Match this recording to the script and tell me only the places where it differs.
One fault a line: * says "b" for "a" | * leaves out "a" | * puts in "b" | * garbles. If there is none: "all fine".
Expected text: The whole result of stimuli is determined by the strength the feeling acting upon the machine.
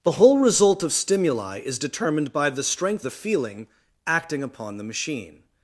all fine